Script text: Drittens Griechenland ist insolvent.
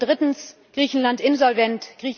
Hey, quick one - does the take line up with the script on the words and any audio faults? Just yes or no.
no